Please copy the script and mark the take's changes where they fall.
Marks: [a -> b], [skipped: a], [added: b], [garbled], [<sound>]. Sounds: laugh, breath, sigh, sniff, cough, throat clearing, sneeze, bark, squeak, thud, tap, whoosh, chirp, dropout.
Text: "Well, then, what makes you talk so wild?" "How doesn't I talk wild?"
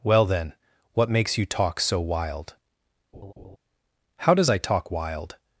"Well, then, what makes you talk so wild?" [laugh] "How [doesn't -> does] I talk wild?"